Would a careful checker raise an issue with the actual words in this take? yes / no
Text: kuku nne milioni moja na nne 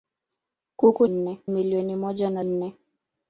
no